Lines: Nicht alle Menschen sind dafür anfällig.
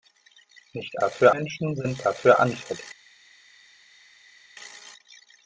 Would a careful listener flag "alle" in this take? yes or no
yes